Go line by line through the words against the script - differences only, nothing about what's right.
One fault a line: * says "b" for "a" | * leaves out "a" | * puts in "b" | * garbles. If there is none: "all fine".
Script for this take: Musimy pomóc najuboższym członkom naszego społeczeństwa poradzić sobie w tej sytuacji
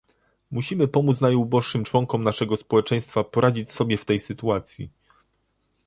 all fine